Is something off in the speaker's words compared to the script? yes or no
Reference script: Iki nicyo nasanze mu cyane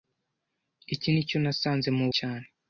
no